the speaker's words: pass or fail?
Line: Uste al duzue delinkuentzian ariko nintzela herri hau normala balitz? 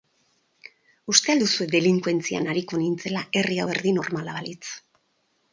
fail